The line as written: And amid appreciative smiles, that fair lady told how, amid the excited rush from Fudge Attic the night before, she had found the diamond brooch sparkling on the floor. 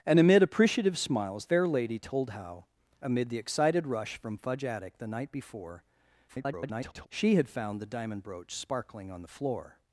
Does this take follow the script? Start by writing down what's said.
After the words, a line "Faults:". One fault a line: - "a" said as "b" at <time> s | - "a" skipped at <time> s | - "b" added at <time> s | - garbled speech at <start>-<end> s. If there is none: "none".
And amid appreciative smiles, fair lady told how, amid the excited rush from Fudge Attic the night before, [garbled] she had found the diamond brooch sparkling on the floor.
Faults:
- "that" skipped at 1.4 s
- garbled speech at 6.3-7.1 s